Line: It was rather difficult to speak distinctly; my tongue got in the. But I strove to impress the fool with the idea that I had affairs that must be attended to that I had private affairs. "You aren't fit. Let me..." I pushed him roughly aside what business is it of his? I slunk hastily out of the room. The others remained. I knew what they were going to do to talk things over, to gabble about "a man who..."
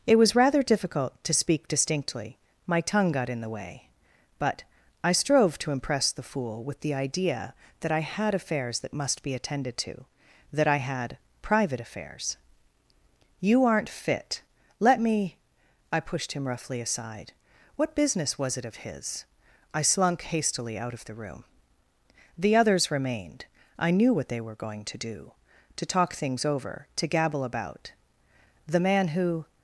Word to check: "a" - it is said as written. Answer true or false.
false